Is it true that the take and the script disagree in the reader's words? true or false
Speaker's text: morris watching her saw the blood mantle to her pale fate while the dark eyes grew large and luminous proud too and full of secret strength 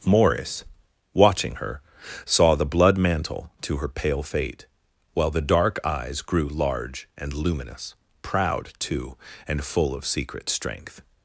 false